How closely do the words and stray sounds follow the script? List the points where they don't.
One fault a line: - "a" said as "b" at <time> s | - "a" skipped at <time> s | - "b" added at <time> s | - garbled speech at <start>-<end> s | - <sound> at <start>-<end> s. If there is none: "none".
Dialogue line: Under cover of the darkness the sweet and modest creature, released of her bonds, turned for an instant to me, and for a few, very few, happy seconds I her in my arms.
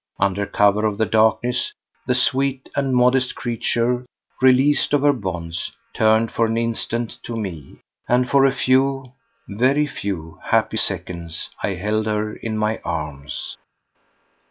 - "held" added at 11.7 s